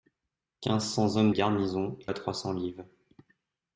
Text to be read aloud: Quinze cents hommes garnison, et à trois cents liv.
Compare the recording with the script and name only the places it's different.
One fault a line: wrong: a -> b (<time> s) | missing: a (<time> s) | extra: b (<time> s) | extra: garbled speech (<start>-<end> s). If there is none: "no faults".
no faults